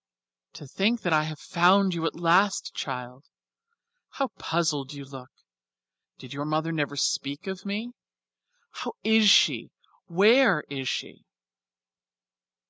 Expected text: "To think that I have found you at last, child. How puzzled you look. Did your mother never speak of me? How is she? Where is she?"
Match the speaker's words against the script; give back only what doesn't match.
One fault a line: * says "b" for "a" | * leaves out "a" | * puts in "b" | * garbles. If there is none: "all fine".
all fine